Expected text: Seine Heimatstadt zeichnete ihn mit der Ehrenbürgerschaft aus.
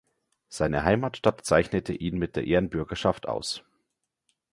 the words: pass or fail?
pass